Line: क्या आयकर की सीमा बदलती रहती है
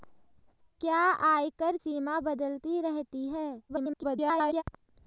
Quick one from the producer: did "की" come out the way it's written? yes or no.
no